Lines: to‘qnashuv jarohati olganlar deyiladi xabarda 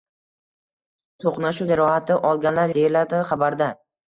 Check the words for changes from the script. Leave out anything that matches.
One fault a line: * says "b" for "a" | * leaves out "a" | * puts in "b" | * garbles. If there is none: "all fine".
all fine